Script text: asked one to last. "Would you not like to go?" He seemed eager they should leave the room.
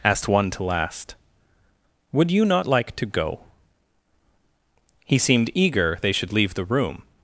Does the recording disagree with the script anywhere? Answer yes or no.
no